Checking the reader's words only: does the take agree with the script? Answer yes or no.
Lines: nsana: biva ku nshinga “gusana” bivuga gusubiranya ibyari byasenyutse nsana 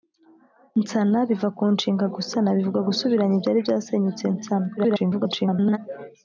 no